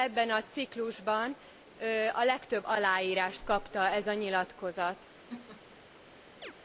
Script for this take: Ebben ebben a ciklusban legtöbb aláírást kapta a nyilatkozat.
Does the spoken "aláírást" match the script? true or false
true